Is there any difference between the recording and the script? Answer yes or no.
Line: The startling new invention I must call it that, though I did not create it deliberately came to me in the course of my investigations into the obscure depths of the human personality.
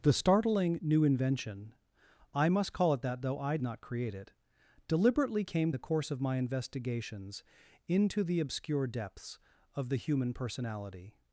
yes